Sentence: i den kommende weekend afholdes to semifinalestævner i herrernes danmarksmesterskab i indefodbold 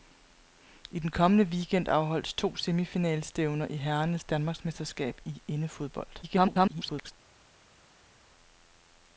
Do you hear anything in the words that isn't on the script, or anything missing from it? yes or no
yes